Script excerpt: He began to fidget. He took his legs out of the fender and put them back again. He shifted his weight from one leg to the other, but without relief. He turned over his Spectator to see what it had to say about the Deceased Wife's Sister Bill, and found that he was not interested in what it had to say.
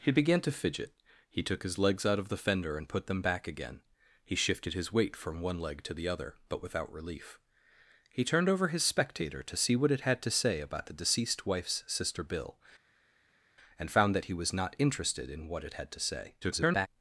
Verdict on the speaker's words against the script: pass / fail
fail